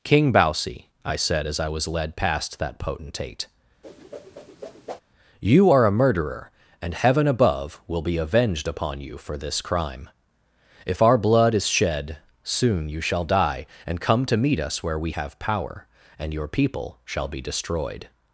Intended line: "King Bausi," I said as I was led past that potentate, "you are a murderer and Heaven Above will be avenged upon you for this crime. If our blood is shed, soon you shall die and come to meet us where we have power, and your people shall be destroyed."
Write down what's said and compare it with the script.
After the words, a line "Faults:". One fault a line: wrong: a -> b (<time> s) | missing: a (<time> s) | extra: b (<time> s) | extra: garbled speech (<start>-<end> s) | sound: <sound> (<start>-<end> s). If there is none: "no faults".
"King Bausi," I said as I was led past that potentate, "you are a murderer and Heaven Above will be avenged upon you for this crime. If our blood is shed, soon you shall die and come to meet us where we have power, and your people shall be destroyed."
Faults:
sound: whoosh (3.8-5.0 s)